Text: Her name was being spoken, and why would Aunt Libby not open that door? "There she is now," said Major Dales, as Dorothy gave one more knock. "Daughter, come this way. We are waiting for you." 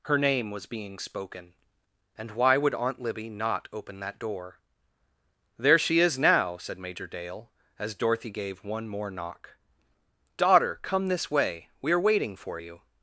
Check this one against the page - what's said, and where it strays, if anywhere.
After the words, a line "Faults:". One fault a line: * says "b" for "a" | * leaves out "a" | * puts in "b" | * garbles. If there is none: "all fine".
Her name was being spoken, and why would Aunt Libby not open that door? "There she is now," said Major Dale, as Dorothy gave one more knock. "Daughter, come this way. We are waiting for you."
Faults:
* says "Dale" for "Dales"